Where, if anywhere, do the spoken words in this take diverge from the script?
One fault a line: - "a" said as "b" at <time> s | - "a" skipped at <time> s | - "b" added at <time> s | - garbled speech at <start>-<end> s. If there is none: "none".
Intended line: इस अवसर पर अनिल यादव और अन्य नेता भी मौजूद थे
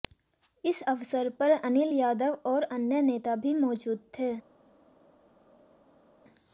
none